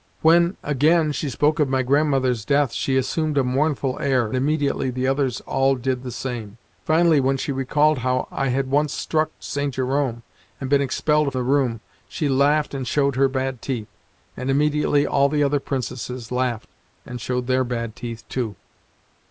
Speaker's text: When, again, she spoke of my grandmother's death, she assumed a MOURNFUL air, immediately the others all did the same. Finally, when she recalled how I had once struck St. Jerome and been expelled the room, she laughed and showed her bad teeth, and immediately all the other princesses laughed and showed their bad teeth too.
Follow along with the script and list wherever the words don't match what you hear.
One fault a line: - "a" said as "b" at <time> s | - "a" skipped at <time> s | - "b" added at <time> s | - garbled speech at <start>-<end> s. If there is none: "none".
none